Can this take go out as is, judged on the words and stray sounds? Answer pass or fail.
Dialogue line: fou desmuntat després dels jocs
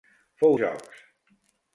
fail